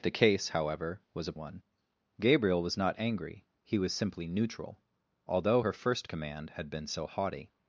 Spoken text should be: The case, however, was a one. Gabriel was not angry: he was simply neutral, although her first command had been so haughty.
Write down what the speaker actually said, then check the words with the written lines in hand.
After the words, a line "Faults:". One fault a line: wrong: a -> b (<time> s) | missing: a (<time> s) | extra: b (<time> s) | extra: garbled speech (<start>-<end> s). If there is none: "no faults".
The case, however, was a one. Gabriel was not angry: he was simply neutral, although her first command had been so haughty.
Faults:
no faults